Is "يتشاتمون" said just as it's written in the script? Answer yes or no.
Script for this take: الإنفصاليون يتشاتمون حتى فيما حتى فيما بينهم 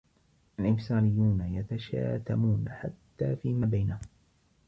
yes